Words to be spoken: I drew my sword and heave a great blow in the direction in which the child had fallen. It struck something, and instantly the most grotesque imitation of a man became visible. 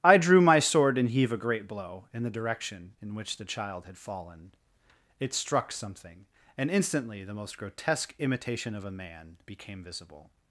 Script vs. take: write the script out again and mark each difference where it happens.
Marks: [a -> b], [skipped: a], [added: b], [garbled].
I drew my sword and heave a great blow in the direction in which the child had fallen. It struck something, and instantly the most grotesque imitation of a man became visible.